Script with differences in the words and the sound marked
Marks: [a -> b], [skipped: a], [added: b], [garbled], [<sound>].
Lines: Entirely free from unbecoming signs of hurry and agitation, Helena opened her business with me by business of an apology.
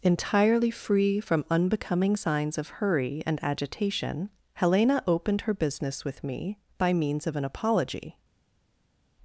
Entirely free from unbecoming signs of hurry and agitation, Helena opened her business with me by [business -> means] of an apology.